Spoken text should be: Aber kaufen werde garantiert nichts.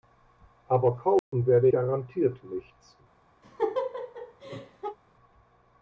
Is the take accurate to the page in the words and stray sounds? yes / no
no